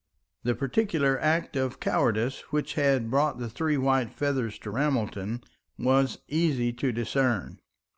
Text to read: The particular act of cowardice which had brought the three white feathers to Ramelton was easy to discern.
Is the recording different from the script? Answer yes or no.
no